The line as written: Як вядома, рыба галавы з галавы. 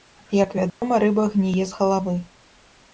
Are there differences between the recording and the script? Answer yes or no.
yes